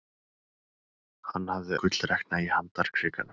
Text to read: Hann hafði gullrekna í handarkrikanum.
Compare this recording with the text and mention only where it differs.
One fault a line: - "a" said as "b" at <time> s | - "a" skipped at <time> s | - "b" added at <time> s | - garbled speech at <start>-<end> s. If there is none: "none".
none